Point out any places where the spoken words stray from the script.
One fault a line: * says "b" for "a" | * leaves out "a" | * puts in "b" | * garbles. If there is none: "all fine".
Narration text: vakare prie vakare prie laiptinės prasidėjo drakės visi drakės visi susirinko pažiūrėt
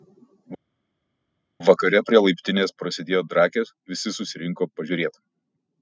* leaves out "vakare prie"
* leaves out "drakės visi"